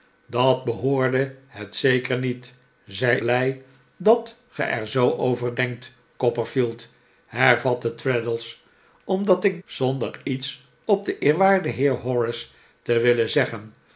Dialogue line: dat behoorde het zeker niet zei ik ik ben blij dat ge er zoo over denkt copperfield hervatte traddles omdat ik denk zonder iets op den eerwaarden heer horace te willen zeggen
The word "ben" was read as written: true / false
false